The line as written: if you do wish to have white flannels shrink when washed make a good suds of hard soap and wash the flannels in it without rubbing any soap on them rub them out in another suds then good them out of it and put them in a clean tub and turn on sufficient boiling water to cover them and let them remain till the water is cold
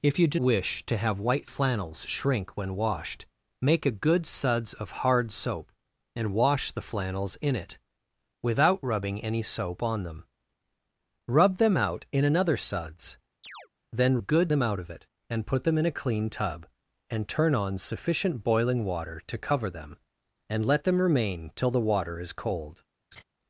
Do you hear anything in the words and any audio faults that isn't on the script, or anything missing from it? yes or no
yes